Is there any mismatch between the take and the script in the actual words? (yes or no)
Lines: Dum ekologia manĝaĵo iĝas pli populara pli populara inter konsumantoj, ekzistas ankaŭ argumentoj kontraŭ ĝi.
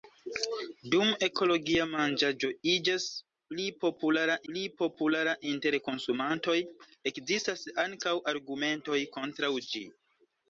no